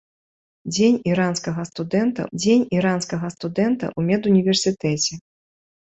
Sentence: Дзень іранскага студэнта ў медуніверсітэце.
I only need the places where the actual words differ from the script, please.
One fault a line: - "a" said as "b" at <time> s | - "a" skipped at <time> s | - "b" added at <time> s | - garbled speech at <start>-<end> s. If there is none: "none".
- "дзень іранскага студэнта" added at 2.4 s